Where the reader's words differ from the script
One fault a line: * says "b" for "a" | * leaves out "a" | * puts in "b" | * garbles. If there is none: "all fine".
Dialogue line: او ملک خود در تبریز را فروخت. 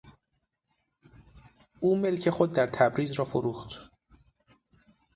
all fine